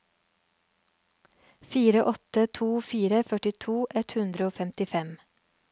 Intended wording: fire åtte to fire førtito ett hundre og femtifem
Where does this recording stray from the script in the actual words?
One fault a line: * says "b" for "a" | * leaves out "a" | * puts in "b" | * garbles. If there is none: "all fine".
all fine